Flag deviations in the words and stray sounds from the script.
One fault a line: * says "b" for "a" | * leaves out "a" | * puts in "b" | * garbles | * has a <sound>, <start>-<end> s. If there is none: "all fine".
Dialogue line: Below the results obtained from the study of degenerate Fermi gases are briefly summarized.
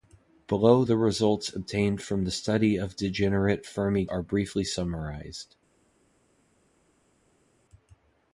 * leaves out "gases"